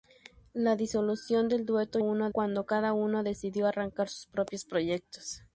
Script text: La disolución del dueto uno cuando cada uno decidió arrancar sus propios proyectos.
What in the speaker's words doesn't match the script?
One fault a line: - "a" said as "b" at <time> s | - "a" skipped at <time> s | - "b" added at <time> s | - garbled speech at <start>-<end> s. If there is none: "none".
none